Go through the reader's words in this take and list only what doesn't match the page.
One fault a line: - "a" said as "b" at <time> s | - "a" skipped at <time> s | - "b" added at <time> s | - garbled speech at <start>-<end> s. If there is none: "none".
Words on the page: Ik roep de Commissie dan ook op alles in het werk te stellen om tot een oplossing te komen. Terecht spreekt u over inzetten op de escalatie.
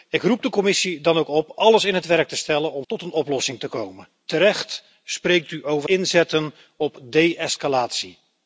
none